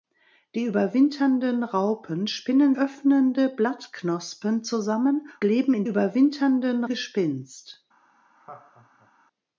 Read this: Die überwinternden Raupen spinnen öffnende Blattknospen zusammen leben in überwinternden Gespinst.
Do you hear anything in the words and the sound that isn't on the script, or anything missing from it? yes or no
yes